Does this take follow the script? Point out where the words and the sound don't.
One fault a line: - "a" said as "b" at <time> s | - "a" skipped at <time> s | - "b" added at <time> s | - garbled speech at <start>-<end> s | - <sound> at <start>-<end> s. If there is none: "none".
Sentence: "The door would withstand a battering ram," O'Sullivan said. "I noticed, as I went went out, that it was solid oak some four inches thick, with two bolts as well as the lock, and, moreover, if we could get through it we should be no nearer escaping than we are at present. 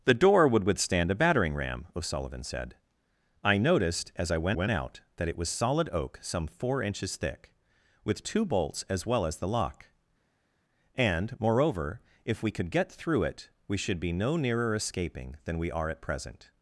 none